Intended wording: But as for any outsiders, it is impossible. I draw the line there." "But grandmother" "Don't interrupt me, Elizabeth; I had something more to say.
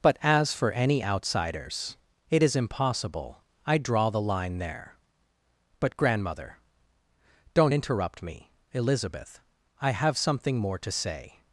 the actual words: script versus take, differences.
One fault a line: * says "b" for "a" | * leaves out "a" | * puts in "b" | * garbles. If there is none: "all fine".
* says "have" for "had"